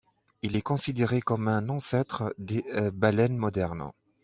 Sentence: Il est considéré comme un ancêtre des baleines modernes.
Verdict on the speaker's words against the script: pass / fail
pass